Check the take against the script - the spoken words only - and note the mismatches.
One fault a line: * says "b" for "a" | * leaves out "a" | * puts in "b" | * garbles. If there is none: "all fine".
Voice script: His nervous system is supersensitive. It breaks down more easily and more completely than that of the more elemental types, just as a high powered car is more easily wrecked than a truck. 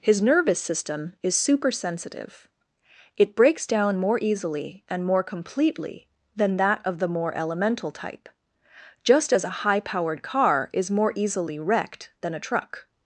* says "type" for "types"